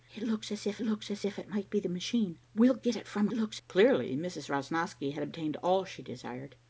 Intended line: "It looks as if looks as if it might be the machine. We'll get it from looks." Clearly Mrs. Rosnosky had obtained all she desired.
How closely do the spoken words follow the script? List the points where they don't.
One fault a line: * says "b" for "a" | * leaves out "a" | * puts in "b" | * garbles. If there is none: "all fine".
all fine